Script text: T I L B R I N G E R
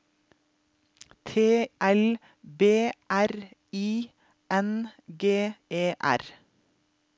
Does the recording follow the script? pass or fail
fail